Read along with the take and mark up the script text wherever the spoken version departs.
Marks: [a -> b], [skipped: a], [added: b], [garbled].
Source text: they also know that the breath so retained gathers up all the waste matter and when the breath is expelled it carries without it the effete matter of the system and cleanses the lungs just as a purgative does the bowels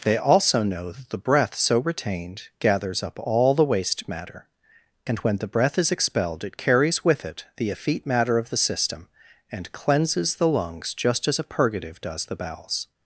they also know that the breath so retained gathers up all the waste matter and when the breath is expelled it carries [without -> with] it the effete matter of the system and cleanses the lungs just as a purgative does the bowels